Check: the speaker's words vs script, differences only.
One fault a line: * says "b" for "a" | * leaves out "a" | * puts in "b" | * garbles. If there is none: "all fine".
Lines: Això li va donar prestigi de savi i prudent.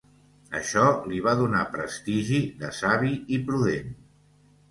all fine